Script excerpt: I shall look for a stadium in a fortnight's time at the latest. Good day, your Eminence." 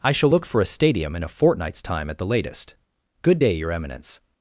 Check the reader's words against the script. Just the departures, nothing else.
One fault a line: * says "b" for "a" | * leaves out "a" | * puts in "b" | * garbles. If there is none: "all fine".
all fine